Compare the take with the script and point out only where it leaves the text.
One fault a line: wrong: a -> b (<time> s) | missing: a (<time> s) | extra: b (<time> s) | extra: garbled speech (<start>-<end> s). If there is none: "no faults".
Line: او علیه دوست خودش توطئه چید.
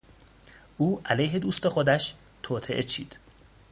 no faults